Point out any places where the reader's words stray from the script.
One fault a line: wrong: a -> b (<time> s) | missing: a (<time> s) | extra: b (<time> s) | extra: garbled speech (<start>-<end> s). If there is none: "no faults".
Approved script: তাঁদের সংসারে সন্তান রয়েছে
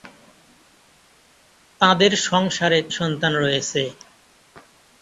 no faults